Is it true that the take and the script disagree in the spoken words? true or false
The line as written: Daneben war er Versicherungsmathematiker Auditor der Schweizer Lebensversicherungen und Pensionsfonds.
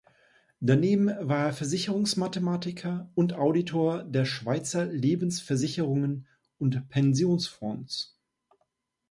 true